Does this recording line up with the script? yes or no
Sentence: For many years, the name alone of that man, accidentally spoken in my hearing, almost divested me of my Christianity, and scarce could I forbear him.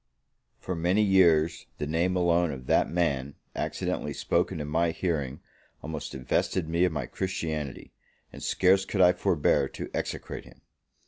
no